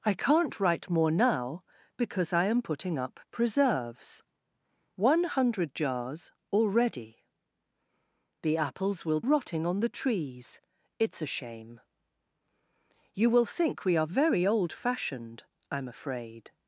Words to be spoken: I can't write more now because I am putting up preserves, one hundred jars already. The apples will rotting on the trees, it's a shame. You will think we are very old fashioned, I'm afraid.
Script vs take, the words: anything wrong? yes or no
no